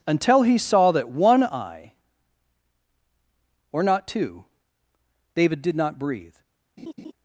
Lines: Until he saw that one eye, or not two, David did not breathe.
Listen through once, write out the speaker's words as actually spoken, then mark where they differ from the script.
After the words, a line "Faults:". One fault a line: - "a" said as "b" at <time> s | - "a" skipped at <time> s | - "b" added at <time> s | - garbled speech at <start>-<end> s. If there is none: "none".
Until he saw that one eye, or not two, David did not breathe.
Faults:
none